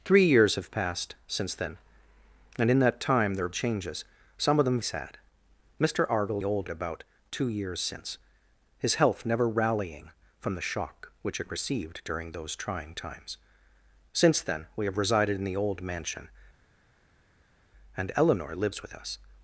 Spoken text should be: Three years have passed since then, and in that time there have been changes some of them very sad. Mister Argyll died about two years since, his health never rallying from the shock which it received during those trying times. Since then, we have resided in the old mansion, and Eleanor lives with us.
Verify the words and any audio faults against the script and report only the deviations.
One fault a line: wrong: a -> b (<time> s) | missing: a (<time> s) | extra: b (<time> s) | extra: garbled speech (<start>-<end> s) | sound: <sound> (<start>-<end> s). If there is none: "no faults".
missing: been (3.5 s)
missing: very (4.8 s)
wrong: died -> old (6.4 s)